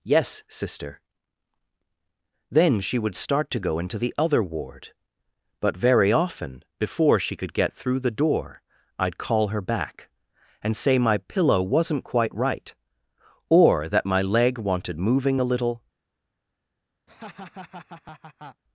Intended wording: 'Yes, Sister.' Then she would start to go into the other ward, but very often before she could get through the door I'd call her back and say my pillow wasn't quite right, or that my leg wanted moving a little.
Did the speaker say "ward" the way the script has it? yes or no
yes